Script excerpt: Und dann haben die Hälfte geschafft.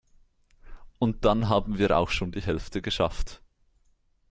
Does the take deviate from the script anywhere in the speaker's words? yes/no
yes